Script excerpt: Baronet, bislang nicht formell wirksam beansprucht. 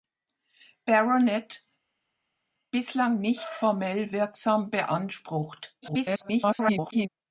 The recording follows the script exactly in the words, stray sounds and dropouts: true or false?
false